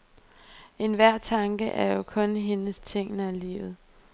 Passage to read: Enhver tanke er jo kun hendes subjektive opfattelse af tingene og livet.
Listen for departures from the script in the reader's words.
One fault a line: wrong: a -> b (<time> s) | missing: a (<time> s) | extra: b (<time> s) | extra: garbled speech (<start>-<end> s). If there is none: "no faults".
missing: subjektive opfattelse af (2.8 s)